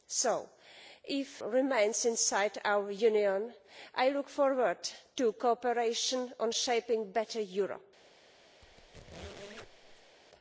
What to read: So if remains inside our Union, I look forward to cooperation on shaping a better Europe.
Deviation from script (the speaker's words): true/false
false